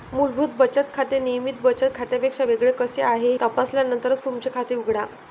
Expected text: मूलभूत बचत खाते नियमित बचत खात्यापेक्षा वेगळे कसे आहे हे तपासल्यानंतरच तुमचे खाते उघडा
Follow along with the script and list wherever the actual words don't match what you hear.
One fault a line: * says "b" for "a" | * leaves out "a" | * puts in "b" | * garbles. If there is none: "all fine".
* leaves out "हे"